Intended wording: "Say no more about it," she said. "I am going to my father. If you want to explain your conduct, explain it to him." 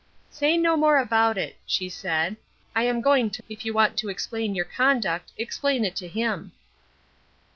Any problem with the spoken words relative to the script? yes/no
yes